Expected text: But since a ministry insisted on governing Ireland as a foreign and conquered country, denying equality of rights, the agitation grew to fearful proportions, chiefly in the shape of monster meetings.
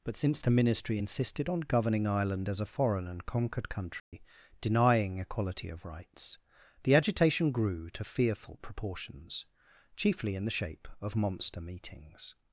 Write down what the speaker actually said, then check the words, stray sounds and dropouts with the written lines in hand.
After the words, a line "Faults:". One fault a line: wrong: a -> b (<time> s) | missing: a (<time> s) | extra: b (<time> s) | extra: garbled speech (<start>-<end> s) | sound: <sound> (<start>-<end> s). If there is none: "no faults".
But since the ministry insisted on governing Ireland as a foreign and conquered country, denying equality of rights, the agitation grew to fearful proportions, chiefly in the shape of monster meetings.
Faults:
wrong: a -> the (0.4 s)
sound: dropout (4.0-4.1 s)